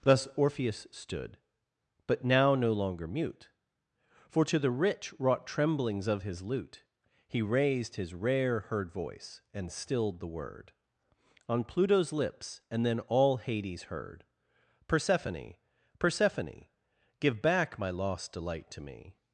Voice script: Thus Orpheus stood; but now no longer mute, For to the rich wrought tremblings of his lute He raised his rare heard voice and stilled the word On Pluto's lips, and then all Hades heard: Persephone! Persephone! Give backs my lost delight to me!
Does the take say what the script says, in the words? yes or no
no